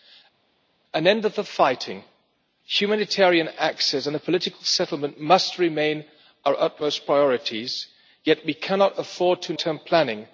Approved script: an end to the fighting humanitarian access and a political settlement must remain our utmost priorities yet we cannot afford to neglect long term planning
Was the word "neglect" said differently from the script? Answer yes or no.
yes